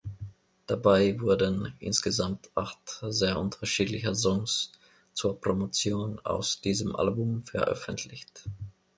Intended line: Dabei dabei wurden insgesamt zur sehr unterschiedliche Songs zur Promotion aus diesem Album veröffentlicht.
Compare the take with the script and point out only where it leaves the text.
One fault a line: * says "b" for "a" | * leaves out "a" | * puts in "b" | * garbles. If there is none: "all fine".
* leaves out "dabei"
* says "acht" for "zur"